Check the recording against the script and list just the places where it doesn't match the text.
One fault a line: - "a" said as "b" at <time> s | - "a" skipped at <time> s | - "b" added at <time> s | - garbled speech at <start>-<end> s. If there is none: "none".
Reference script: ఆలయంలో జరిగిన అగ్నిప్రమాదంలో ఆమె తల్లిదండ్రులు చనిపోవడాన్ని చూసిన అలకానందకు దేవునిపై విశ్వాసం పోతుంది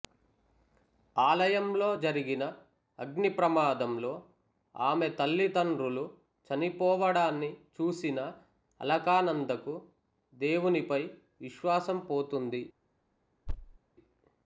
none